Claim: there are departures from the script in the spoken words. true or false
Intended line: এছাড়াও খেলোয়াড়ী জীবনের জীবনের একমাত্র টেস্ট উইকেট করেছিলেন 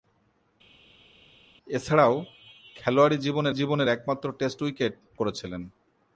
false